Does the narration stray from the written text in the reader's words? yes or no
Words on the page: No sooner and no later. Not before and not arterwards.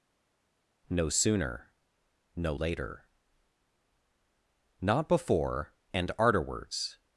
yes